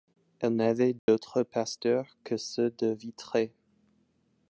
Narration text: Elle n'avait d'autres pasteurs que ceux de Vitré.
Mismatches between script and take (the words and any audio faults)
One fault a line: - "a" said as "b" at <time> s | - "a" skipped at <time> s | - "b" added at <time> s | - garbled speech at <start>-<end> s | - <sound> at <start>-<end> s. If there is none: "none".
- dropout at 1.0-1.1 s